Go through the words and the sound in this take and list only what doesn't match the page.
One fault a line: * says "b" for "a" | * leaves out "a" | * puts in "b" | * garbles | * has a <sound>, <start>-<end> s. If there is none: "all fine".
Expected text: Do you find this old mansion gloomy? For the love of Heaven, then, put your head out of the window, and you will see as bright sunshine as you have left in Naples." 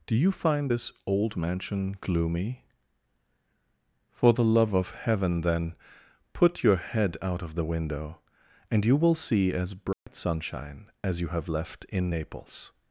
* has a dropout, 9.9-10.1 s